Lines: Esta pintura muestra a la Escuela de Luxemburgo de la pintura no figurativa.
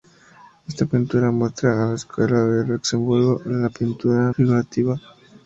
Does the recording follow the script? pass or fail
fail